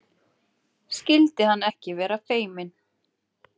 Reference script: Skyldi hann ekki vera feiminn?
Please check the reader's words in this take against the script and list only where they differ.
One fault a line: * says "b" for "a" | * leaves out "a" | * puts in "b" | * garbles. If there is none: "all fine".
all fine